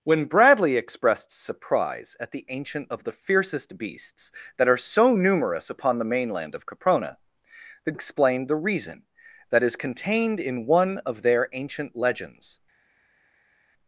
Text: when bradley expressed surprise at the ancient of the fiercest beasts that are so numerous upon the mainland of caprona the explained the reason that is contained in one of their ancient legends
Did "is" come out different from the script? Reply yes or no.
no